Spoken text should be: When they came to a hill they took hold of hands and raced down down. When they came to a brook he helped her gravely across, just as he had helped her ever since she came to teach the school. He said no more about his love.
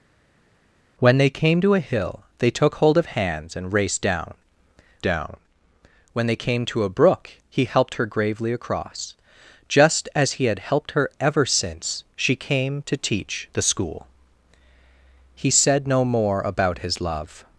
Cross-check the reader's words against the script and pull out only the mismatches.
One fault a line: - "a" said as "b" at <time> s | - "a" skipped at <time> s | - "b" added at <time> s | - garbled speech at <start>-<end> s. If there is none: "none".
none